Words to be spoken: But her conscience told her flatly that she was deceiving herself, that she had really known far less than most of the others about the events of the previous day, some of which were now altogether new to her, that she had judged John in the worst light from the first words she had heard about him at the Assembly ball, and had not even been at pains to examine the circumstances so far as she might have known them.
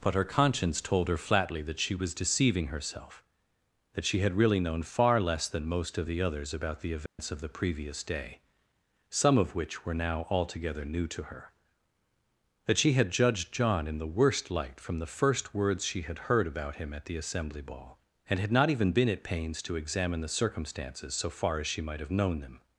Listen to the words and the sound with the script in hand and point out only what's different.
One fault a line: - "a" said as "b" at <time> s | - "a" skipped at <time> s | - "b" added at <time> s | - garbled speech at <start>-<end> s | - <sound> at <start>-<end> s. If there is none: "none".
- dropout at 7.1-7.2 s